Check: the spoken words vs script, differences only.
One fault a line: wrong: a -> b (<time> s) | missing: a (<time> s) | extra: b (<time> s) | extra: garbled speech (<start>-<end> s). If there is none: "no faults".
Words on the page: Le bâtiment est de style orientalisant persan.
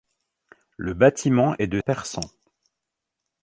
missing: style orientalisant (1.8 s)